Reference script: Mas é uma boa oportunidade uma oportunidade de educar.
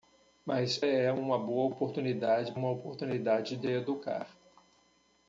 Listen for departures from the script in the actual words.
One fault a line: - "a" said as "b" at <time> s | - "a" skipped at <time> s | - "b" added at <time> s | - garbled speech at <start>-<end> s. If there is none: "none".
none